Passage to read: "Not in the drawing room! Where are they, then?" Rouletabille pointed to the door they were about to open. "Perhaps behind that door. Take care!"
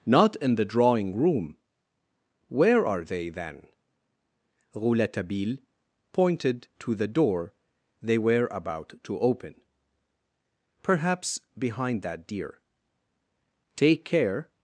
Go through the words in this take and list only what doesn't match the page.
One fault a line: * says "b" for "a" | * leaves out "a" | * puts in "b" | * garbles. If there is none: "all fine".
* says "deer" for "door"